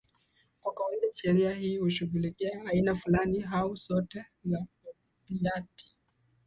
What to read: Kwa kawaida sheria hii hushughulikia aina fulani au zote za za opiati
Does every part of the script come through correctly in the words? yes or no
no